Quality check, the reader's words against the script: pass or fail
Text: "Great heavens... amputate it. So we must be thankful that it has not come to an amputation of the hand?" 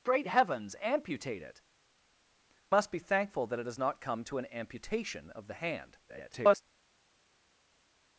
fail